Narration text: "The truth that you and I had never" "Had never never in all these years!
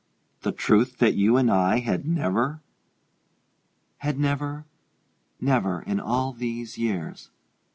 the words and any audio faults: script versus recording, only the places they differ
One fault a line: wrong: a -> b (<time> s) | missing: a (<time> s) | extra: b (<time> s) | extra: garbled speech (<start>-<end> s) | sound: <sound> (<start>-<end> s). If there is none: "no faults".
no faults